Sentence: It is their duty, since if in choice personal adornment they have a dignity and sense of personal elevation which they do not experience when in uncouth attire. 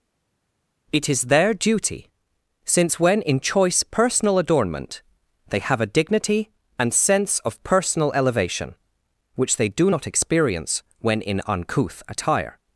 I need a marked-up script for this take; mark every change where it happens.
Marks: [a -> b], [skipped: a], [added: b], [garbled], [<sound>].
It is their duty, since [if -> when] in choice personal adornment they have a dignity and sense of personal elevation which they do not experience when in uncouth attire.